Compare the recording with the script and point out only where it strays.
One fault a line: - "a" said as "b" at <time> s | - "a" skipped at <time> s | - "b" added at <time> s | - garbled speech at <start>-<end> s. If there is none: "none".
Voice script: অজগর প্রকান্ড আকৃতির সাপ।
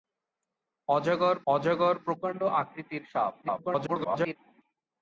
- "অজগর" added at 1.5 s
- garbled speech at 3.4-4.4 s